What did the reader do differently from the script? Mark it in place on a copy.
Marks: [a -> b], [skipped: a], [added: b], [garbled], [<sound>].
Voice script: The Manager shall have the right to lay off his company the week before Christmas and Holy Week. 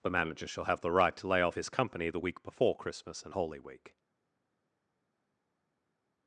The Manager shall have the right to lay off his company the week before Christmas and Holy Week.